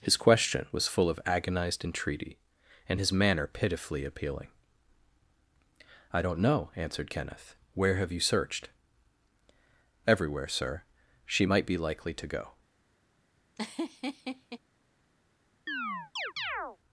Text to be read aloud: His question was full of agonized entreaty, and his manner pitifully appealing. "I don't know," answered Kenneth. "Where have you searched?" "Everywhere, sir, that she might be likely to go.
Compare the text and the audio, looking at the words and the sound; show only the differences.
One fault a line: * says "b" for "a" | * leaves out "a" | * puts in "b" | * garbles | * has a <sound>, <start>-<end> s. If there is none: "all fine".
* leaves out "that"
* has a laugh, 13.6-14.6 s
* has a chirp, 15.7-16.8 s